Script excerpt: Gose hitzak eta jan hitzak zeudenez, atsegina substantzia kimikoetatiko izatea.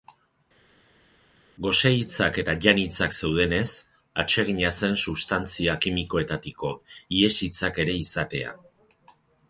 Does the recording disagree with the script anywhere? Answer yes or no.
yes